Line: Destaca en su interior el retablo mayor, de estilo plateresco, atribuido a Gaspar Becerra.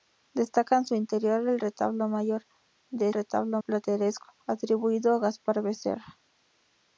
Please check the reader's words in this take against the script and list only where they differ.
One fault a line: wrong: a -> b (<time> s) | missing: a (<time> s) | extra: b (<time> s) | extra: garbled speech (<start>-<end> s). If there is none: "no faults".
wrong: estilo -> retablo (3.1 s)